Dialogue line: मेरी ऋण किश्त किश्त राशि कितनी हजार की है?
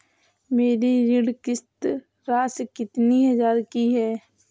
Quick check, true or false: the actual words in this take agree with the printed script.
false